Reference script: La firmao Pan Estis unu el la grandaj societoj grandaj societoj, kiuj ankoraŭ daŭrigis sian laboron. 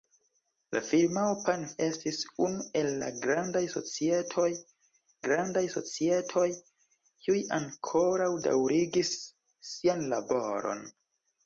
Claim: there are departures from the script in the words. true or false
false